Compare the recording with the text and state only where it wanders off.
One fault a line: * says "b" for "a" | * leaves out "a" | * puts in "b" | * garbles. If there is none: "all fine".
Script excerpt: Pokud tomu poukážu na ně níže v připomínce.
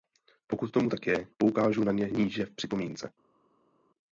* puts in "tak je"